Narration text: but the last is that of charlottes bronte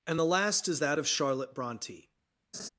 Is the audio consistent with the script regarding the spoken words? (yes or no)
no